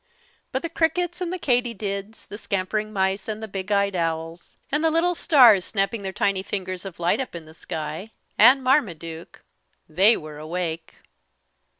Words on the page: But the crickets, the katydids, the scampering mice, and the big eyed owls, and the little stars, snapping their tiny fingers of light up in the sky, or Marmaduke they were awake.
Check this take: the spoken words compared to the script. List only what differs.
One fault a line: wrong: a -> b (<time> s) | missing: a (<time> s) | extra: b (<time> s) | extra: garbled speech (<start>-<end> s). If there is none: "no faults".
extra: and (1.2 s)
wrong: or -> and (8.4 s)